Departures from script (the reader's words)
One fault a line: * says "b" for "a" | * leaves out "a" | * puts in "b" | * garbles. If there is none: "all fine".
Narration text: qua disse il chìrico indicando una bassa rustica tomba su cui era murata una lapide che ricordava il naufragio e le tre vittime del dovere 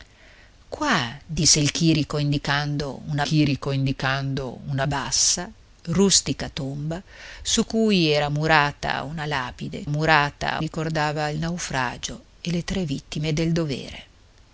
* puts in "chìrico indicando una"
* says "murata" for "che"